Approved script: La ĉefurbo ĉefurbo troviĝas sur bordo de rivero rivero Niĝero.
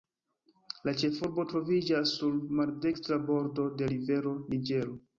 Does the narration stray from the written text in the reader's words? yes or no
yes